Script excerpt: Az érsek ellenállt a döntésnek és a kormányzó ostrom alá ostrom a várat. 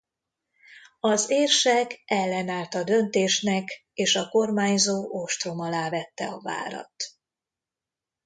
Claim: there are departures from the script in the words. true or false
true